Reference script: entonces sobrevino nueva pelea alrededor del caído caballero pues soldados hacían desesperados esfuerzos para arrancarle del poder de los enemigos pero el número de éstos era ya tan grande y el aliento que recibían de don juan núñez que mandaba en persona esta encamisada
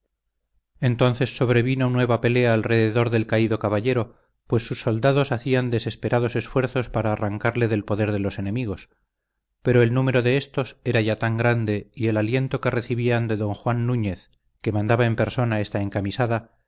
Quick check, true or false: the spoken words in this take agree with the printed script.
false